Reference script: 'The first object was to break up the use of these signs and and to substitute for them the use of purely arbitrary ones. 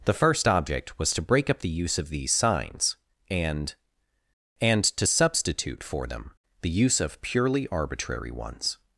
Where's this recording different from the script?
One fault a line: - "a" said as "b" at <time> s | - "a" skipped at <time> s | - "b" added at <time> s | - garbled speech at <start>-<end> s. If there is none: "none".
none